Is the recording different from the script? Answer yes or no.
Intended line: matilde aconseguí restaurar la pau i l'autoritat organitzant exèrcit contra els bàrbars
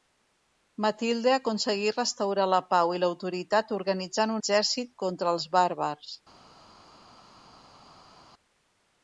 no